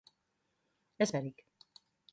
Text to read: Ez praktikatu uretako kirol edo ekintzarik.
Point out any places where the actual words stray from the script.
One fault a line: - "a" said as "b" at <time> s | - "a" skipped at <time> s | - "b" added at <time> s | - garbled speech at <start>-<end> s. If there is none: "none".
- "praktikatu uretako kirol" skipped at 1.1 s